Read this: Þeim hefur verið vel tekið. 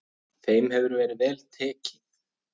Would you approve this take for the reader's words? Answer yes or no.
yes